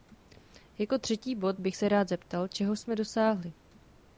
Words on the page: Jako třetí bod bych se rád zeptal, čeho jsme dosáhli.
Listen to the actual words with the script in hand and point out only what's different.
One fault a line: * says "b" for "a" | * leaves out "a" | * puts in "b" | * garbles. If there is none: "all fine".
all fine